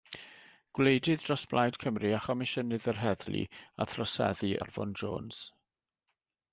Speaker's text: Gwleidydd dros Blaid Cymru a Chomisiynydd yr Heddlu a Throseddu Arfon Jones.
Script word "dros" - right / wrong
right